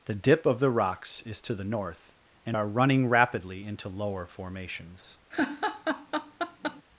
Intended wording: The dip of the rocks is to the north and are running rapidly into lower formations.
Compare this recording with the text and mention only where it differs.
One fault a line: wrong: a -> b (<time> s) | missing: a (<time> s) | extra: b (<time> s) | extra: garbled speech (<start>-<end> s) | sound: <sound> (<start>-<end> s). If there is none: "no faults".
sound: laugh (5.3-6.8 s)